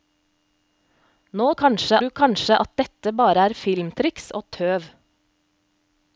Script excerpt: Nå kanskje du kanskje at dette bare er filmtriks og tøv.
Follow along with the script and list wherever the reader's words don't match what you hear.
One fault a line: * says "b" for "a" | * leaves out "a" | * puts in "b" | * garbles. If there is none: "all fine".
all fine